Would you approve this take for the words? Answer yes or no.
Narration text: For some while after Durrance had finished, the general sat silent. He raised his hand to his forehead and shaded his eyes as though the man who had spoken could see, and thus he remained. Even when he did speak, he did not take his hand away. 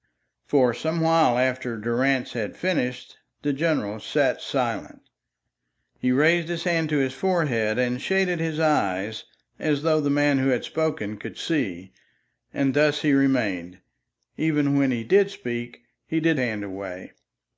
no